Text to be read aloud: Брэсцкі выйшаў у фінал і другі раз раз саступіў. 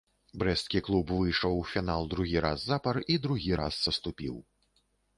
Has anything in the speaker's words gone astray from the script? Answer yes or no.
yes